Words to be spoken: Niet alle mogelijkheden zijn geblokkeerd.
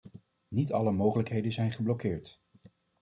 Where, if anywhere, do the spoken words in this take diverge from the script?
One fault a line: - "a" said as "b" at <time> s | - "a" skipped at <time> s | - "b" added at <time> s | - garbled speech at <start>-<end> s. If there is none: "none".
none